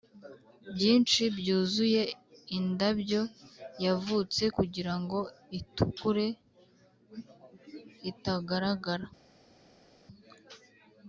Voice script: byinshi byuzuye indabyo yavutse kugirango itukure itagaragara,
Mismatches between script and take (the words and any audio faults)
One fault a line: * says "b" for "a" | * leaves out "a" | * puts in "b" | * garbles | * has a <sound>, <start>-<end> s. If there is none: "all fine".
all fine